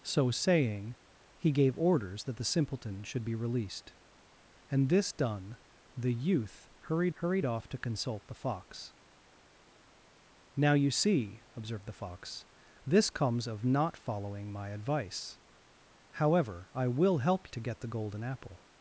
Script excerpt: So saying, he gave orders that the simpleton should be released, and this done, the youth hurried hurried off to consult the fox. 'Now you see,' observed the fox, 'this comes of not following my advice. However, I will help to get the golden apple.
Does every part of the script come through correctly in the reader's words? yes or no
yes